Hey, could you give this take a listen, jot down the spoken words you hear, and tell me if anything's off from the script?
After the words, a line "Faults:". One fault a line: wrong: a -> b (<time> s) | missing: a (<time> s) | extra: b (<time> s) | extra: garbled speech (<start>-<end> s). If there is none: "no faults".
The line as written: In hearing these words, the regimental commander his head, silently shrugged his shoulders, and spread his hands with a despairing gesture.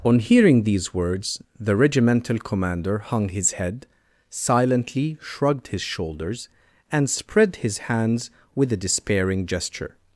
On hearing these words, the regimental commander hung his head, silently shrugged his shoulders, and spread his hands with a despairing gesture.
Faults:
wrong: In -> On (0.0 s)
extra: hung (3.0 s)